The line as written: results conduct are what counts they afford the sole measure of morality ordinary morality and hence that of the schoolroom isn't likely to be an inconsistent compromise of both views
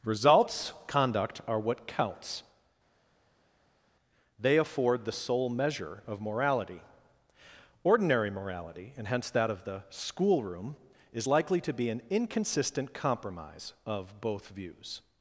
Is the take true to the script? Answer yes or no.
no